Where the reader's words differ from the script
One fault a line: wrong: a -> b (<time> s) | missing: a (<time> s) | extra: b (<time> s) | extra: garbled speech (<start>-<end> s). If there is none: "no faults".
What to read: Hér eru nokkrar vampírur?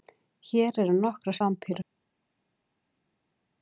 no faults